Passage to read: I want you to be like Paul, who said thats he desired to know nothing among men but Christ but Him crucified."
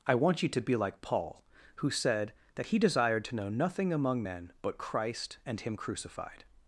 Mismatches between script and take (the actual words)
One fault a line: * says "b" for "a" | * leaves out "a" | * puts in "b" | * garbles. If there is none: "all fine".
* says "that" for "thats"
* says "and" for "but"